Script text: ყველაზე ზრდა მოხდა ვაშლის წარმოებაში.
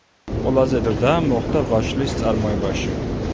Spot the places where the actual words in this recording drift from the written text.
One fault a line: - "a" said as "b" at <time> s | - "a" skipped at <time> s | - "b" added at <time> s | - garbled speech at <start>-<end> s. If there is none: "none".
none